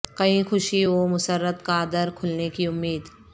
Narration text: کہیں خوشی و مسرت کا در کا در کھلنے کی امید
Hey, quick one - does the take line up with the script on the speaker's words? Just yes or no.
no